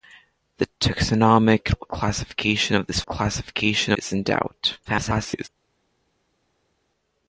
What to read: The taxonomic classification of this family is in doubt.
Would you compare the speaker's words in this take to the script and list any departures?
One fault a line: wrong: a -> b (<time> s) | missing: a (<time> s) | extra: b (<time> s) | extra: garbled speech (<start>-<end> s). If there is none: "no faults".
wrong: family -> classification (3.1 s)
extra: garbled speech (4.8-5.5 s)